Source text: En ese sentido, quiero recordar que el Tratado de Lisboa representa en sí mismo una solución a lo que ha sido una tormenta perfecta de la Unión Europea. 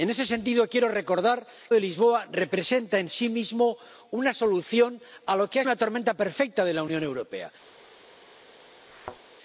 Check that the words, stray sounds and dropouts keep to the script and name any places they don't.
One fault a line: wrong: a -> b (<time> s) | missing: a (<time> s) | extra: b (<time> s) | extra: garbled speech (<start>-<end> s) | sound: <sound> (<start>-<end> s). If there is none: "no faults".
missing: que el Tratado (1.4 s)
missing: sido (5.6 s)
sound: thud (8.9-9.2 s)